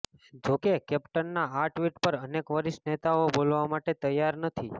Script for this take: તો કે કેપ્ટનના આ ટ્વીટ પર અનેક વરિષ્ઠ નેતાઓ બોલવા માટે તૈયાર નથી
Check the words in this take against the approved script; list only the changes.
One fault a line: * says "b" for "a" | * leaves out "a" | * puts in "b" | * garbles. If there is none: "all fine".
* says "જો" for "તો"